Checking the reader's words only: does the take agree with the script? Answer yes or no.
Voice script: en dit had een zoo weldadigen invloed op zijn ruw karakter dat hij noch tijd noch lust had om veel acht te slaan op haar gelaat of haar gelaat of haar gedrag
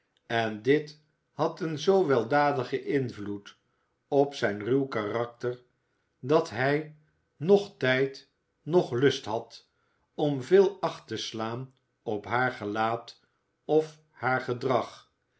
no